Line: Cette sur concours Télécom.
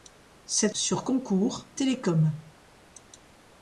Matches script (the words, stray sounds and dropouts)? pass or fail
pass